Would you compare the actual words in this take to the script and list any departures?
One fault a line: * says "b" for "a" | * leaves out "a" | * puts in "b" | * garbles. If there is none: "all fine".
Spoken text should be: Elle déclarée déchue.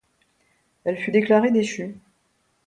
* puts in "fut"